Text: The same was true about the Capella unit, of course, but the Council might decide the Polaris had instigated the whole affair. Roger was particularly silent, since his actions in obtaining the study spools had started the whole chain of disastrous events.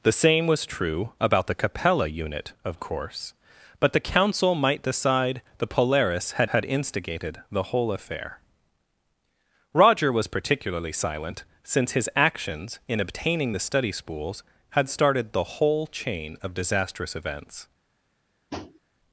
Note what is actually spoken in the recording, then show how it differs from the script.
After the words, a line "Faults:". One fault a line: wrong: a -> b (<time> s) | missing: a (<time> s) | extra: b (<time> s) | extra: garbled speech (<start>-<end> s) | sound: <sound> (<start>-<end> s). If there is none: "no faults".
The same was true about the Capella unit, of course, but the Council might decide the Polaris had had instigated the whole affair. Roger was particularly silent, since his actions in obtaining the study spools had started the whole chain of disastrous events.
Faults:
extra: had (6.5 s)
sound: tap (18.5-18.8 s)